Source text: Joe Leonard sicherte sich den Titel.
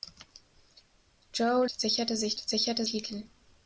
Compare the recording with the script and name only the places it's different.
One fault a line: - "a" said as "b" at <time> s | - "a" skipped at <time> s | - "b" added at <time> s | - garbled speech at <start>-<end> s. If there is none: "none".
- "Leonard" skipped at 1.7 s
- "den" said as "sicherte" at 2.4 s